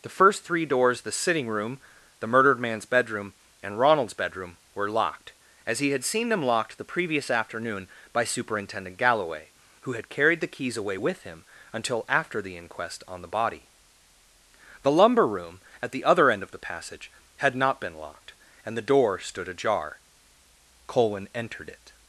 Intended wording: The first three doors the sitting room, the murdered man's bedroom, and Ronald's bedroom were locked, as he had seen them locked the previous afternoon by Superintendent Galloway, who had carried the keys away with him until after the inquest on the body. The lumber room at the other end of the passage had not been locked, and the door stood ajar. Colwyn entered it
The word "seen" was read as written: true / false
true